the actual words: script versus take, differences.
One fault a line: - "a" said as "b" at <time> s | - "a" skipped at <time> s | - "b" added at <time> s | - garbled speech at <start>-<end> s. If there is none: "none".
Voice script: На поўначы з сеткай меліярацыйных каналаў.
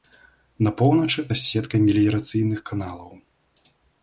none